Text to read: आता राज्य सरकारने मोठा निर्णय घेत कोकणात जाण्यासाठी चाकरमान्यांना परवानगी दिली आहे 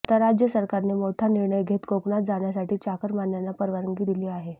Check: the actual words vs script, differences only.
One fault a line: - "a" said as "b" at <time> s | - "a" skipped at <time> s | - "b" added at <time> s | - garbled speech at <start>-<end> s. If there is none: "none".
none